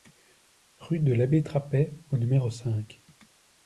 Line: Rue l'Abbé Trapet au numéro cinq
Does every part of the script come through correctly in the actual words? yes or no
no